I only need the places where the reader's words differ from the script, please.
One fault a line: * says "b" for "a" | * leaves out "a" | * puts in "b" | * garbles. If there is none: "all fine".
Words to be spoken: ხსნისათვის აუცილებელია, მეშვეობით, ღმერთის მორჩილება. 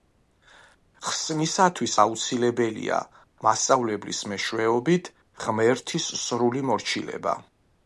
* puts in "მასწავლებლის"
* puts in "სრული"